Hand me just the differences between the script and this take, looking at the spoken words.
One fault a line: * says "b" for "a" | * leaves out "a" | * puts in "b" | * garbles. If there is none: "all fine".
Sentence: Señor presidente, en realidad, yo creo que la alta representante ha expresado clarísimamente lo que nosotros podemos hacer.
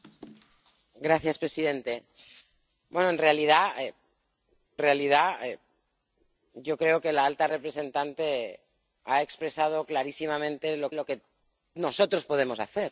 * puts in "realidad"
* puts in "lo"